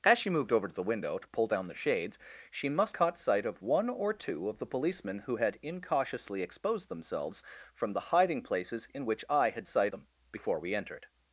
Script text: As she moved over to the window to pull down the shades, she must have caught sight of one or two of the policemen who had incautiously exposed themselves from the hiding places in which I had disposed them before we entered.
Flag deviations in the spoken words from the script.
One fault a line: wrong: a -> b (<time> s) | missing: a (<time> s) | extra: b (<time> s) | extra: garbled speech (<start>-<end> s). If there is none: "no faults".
missing: have (3.0 s)
wrong: disposed -> sight (9.7 s)